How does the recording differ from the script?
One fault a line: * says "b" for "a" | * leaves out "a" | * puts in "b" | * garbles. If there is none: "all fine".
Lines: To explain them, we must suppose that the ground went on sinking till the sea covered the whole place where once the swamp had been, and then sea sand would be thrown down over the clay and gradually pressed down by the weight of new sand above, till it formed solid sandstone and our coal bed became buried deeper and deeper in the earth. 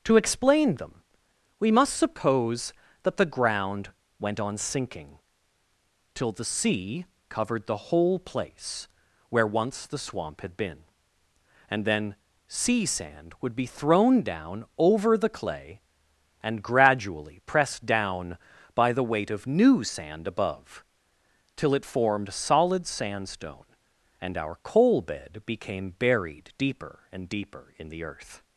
all fine